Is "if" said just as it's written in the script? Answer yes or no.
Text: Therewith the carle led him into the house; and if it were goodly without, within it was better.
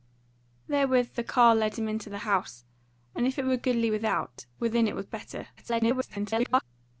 yes